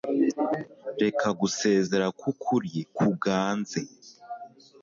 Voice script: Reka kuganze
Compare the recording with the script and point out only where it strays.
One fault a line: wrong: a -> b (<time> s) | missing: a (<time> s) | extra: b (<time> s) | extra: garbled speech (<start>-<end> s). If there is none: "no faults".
extra: gusezera kwukuri (1.4 s)